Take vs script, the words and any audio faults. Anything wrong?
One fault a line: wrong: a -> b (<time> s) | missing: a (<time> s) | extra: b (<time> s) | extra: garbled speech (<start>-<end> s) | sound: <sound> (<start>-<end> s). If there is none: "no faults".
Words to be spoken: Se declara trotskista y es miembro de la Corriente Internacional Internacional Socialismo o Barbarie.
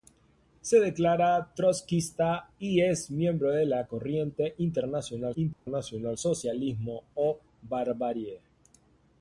sound: dropout (5.5-5.7 s)